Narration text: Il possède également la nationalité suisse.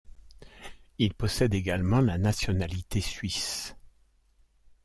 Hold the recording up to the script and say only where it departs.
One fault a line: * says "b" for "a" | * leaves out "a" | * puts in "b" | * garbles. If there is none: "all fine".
all fine